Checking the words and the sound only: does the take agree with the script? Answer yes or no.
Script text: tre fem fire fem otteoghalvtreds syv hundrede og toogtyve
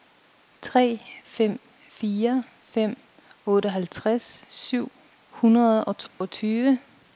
no